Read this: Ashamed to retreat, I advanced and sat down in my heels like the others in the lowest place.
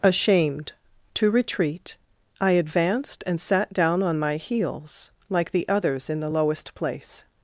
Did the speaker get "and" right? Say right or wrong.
right